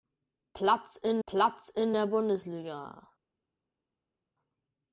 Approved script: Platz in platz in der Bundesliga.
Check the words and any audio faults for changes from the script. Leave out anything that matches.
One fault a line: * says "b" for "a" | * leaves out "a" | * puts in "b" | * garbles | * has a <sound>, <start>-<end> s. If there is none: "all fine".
all fine